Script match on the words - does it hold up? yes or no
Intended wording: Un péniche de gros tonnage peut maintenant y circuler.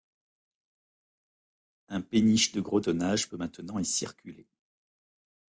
yes